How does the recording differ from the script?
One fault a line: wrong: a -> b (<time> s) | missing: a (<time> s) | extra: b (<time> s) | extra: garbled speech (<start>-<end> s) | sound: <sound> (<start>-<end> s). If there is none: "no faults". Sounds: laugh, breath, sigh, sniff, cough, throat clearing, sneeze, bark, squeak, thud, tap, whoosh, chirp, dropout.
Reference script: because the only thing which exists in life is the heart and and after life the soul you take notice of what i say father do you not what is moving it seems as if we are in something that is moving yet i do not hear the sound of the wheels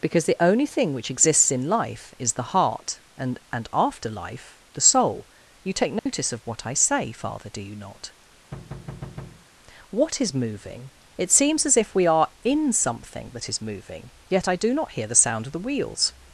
sound: dropout (6.0-6.1 s)
sound: thud (8.5-9.5 s)